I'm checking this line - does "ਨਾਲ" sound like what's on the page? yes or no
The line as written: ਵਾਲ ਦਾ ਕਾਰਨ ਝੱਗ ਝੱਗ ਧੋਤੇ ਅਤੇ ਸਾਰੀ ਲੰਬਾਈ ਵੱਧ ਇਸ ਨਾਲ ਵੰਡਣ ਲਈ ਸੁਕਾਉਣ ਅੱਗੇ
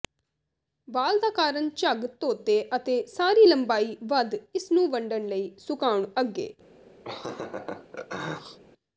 no